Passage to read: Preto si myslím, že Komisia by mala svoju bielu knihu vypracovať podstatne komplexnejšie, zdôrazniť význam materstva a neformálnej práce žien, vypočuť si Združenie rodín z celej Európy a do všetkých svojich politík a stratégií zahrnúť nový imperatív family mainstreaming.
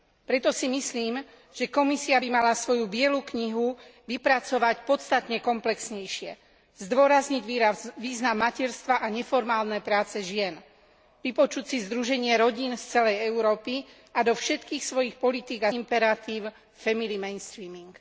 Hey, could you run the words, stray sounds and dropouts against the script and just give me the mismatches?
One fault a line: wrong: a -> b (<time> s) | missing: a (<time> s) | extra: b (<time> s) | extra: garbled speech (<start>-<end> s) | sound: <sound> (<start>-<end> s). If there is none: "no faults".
missing: stratégií zahrnúť nový (15.7 s)